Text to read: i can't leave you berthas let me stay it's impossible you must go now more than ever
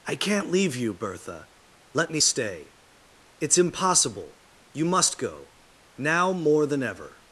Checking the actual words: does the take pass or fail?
fail